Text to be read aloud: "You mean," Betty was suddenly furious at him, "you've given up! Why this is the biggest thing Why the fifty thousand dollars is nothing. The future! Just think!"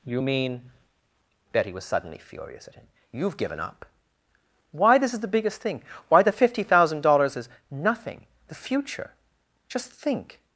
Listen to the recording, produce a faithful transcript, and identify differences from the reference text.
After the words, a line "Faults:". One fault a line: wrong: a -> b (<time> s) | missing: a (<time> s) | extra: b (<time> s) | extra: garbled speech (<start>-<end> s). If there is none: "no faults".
"You mean," Betty was suddenly furious at him, "you've given up! Why this is the biggest thing Why the fifty thousand dollars is nothing. The future! Just think!"
Faults:
no faults